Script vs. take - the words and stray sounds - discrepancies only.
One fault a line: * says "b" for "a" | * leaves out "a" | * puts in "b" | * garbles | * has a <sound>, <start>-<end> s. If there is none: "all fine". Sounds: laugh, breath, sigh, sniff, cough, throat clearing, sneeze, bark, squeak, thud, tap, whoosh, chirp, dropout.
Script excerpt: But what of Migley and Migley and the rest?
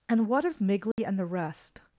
* says "And" for "But"
* has a dropout, 0.9-1.0 s
* leaves out "Migley and"